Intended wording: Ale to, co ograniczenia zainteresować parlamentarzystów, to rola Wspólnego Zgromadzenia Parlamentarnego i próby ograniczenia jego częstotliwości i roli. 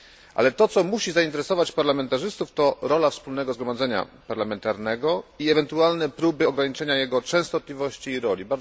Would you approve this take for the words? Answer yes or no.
no